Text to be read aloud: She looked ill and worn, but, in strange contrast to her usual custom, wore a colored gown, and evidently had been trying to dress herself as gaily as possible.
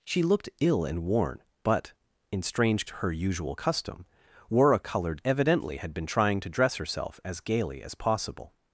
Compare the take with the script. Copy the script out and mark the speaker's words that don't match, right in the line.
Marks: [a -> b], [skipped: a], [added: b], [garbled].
She looked ill and worn, but, in strange [skipped: contrast] to her usual custom, wore a colored [skipped: gown, and] evidently had been trying to dress herself as gaily as possible.